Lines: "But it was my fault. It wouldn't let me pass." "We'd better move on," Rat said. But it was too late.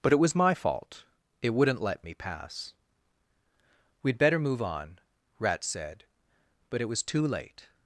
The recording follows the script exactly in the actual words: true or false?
true